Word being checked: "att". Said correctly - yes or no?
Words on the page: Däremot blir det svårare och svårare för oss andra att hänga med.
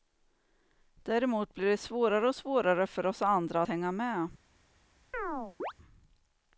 no